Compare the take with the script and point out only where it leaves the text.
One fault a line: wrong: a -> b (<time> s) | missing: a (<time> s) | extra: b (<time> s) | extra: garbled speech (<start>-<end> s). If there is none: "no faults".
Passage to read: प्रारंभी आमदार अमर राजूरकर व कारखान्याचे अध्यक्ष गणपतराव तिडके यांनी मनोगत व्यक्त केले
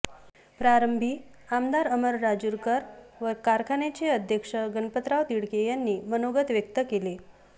no faults